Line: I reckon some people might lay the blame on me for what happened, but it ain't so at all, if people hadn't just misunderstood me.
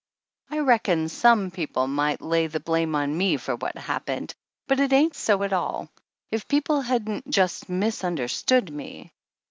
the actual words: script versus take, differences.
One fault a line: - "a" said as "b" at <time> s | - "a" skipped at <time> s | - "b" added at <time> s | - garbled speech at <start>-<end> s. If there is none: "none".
none